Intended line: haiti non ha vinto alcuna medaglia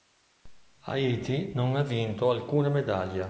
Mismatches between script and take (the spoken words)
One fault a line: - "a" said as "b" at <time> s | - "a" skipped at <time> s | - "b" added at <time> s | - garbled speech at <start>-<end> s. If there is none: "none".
none